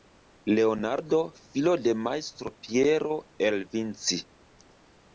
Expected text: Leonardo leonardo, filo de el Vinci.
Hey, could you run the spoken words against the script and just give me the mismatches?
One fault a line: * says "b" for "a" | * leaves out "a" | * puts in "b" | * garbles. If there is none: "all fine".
* leaves out "leonardo"
* puts in "majstro Piero"